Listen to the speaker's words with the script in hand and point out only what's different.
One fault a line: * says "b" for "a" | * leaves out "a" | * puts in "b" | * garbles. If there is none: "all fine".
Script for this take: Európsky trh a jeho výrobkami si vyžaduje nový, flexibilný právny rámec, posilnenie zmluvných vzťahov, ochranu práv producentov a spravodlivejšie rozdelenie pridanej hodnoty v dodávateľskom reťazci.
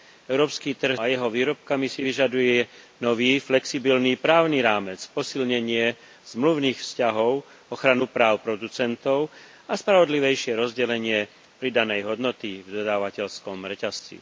all fine